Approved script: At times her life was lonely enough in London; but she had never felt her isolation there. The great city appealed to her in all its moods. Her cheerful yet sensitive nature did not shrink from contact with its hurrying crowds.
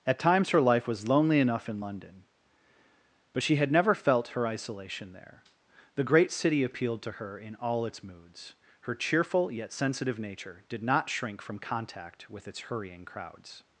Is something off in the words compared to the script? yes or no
no